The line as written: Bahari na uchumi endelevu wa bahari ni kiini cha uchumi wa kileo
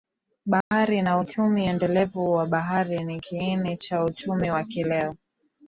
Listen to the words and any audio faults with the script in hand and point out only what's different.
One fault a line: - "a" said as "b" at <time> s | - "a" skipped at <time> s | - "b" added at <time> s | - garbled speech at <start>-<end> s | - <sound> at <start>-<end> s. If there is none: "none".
- dropout at 0.6-0.7 s